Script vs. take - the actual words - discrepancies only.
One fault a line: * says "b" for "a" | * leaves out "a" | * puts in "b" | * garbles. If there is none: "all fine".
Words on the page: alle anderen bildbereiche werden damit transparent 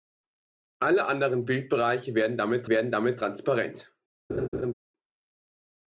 * puts in "werden damit"